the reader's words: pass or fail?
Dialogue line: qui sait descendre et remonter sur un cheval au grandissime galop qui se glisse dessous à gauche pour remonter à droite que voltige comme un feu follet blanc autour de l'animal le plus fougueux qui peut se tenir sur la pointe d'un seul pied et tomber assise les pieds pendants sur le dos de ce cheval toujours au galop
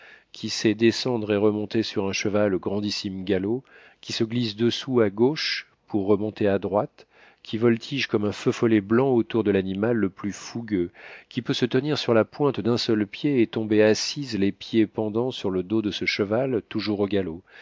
fail